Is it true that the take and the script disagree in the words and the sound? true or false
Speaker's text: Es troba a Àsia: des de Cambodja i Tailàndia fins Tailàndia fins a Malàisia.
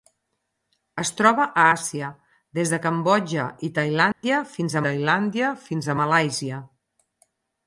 true